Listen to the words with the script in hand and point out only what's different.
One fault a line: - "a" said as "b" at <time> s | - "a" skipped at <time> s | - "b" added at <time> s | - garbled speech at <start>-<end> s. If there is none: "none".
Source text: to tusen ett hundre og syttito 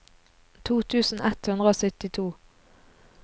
none